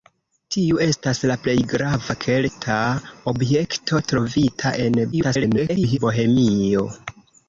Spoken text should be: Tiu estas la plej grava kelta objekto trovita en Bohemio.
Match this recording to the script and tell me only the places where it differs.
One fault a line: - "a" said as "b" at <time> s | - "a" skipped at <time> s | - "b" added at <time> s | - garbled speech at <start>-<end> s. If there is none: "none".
- garbled speech at 5.1-6.0 s